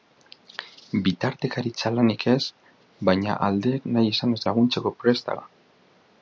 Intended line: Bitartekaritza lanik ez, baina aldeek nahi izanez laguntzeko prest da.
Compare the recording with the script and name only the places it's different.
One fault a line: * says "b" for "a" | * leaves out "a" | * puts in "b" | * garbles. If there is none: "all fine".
all fine